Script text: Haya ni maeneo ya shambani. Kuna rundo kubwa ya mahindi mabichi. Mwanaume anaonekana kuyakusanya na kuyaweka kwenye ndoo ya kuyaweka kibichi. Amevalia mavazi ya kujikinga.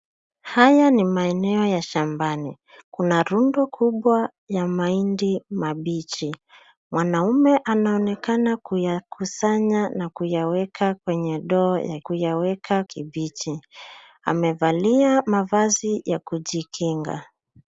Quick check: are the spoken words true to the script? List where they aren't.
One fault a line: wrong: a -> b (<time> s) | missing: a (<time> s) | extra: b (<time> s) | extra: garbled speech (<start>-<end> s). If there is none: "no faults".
no faults